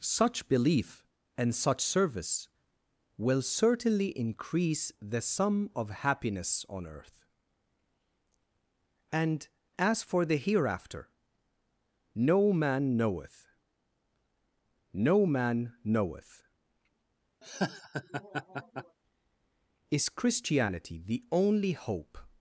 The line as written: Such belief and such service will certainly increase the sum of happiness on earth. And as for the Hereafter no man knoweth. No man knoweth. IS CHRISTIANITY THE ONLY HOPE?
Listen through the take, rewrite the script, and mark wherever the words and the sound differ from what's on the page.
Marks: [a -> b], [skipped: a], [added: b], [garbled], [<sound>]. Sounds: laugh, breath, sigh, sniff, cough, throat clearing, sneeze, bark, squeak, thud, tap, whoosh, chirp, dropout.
Such belief and such service will certainly increase the sum of happiness on earth. And as for the Hereafter no man knoweth. No man knoweth. [laugh] IS CHRISTIANITY THE ONLY HOPE?